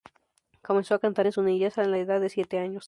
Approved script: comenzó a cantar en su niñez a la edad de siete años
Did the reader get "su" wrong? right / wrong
right